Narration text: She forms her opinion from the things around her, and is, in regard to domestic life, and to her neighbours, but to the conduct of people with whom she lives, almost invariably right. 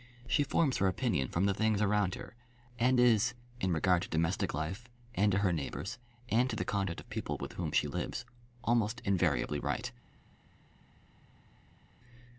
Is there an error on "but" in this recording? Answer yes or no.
yes